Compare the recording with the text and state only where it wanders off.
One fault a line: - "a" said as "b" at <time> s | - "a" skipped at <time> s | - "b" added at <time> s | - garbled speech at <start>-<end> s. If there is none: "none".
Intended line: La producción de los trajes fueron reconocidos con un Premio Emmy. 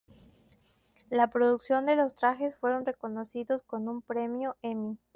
none